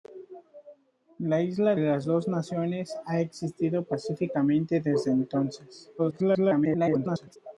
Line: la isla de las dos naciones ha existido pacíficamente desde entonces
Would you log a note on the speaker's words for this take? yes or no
yes